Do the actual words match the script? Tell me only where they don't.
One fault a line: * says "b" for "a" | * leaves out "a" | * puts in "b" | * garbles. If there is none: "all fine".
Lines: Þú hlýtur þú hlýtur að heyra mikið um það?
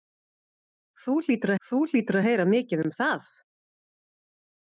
all fine